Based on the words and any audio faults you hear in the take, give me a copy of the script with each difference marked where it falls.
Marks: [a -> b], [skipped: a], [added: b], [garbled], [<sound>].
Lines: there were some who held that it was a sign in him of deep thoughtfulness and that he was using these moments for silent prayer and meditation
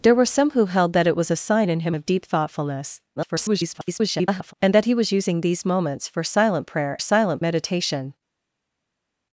there were some who held that it was a sign in him of deep thoughtfulness [garbled] and that he was using these moments for silent prayer [and -> silent] meditation